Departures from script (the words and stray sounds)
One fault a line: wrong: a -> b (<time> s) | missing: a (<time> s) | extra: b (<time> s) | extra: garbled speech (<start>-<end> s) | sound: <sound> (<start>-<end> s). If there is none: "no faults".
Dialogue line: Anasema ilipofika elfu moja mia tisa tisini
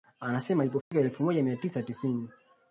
sound: dropout (0.8-0.9 s)